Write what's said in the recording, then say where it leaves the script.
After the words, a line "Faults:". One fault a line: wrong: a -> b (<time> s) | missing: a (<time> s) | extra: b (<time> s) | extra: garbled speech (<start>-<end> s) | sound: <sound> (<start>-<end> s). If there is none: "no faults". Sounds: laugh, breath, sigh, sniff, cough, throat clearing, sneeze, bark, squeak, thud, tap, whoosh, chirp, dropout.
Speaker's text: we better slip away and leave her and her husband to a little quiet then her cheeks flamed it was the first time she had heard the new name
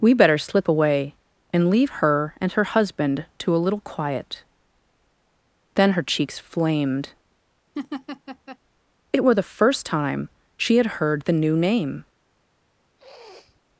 we better slip away and leave her and her husband to a little quiet then her cheeks flamed it were the first time she had heard the new name
Faults:
sound: laugh (7.8-8.6 s)
wrong: was -> were (9.2 s)
sound: sniff (13.0-13.6 s)